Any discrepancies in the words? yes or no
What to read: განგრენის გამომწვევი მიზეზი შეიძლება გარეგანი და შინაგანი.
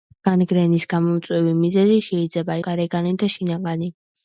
no